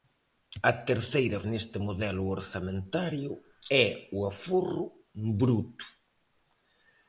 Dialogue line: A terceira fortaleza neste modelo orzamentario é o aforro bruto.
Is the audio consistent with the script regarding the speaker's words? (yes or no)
no